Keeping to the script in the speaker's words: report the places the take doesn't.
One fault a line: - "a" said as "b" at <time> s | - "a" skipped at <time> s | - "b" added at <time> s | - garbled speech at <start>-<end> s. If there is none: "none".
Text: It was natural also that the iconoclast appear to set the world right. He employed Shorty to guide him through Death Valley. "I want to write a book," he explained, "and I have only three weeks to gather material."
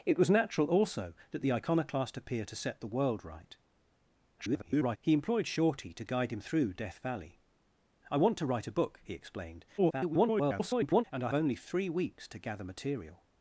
- garbled speech at 4.4-5.0 s
- garbled speech at 9.8-11.0 s
- "have" skipped at 11.3 s